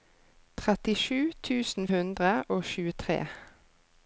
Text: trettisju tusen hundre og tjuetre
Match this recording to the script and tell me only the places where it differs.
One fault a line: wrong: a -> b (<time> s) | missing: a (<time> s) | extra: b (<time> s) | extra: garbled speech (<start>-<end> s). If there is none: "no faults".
no faults